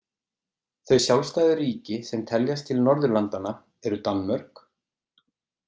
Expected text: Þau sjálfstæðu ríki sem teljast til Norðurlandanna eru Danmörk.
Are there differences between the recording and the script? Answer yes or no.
no